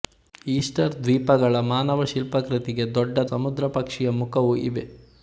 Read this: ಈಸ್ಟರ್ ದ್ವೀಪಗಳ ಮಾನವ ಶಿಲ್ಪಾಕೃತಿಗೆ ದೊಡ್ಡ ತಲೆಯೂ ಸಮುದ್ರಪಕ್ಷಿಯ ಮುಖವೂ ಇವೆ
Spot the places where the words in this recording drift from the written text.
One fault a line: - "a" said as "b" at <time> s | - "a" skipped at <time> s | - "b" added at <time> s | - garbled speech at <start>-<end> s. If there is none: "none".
- "ತಲೆಯೂ" skipped at 3.2 s